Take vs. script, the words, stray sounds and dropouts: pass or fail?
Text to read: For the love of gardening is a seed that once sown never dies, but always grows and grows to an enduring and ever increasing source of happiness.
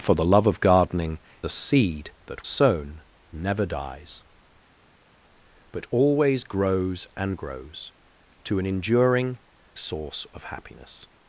fail